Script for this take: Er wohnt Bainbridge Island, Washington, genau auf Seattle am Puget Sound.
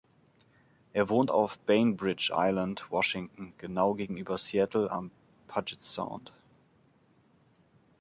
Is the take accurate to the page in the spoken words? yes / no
no